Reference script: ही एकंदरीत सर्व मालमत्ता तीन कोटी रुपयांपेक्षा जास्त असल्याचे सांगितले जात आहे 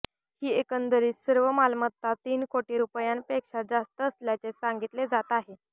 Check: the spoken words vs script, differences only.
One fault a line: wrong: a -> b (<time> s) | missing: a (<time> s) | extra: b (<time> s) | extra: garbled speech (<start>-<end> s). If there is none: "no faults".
no faults